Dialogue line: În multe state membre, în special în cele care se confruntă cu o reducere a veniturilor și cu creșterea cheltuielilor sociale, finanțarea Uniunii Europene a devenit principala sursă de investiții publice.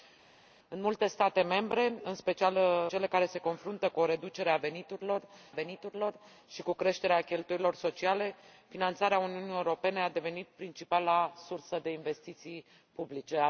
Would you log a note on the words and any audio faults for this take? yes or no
yes